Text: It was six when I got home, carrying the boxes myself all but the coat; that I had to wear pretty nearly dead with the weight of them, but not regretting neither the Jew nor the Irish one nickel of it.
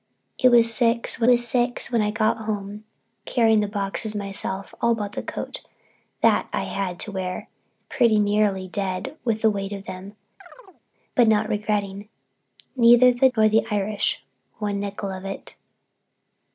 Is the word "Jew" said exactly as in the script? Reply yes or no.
no